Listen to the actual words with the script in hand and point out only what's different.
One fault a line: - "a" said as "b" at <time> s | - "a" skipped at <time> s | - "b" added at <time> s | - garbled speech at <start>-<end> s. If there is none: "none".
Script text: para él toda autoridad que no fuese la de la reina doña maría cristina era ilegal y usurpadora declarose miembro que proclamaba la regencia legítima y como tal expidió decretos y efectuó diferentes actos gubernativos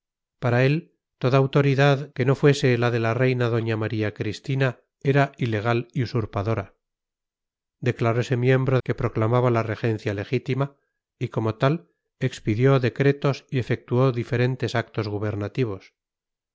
none